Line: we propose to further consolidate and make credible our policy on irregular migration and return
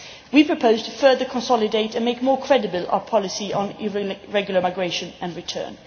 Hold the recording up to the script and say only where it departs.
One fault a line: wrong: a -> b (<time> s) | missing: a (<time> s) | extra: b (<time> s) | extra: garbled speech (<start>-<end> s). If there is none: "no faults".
extra: more (2.2 s)